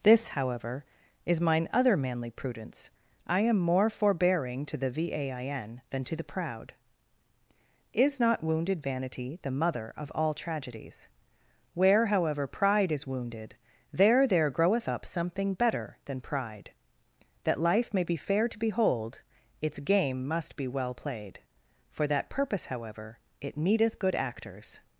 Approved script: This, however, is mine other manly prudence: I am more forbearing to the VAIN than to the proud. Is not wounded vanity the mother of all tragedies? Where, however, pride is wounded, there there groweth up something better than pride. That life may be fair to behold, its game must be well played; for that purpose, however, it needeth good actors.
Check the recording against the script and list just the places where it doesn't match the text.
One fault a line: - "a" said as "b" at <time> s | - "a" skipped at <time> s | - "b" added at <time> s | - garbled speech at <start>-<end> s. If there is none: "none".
none